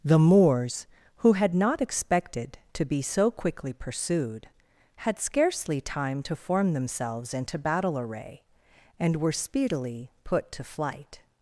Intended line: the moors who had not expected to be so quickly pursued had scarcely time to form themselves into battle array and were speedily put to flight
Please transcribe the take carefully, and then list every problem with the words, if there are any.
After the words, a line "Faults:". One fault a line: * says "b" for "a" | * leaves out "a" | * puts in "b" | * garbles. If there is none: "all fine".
the moors who had not expected to be so quickly pursued had scarcely time to form themselves into battle array and were speedily put to flight
Faults:
all fine